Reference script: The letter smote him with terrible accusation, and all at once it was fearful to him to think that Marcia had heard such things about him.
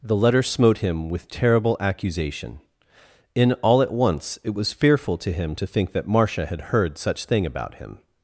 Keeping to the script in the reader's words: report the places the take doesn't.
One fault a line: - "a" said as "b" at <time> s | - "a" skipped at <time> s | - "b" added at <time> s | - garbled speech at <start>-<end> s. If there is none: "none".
- "and" said as "in" at 3.4 s
- "things" said as "thing" at 7.3 s